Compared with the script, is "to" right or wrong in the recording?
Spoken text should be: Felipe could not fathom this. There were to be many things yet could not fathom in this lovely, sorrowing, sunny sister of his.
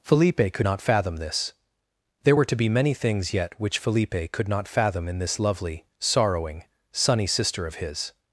right